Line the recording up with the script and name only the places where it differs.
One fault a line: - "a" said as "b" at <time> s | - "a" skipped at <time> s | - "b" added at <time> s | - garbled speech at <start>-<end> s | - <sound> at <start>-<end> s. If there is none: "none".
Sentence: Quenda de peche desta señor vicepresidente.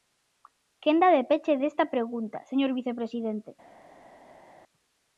- "pregunta" added at 1.9 s